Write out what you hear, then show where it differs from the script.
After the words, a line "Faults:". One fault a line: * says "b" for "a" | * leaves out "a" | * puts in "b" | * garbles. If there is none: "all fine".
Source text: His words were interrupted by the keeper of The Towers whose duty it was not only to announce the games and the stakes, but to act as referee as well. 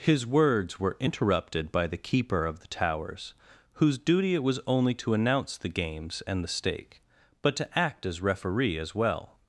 His words were interrupted by the keeper of The Towers whose duty it was only to announce the games and the stake, but to act as referee as well.
Faults:
* leaves out "not"
* says "stake" for "stakes"